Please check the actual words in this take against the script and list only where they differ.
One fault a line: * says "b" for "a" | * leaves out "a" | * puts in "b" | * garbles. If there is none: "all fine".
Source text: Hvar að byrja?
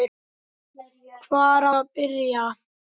all fine